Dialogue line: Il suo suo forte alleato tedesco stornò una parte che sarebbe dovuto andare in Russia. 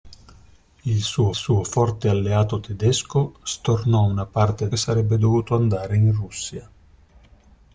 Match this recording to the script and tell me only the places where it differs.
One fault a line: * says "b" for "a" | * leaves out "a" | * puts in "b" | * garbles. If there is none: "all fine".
all fine